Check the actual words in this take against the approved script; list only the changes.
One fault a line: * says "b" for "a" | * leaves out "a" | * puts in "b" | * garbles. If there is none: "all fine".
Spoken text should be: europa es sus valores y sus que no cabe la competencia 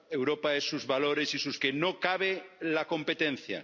all fine